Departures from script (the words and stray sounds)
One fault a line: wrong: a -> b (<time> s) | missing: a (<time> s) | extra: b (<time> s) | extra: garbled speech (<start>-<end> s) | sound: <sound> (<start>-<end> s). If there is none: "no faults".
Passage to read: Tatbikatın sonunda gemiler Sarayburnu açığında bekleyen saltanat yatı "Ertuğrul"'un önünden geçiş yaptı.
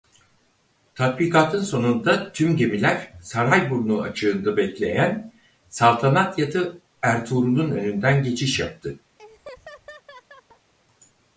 extra: tüm (2.3 s)
sound: laugh (9.2-10.7 s)